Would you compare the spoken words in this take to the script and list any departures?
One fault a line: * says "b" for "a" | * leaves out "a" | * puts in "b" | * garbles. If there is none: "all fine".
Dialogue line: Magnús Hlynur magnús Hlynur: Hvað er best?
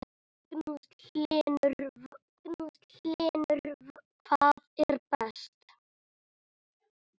all fine